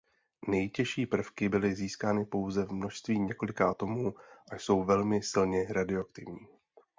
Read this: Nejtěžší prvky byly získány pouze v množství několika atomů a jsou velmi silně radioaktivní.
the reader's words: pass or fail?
pass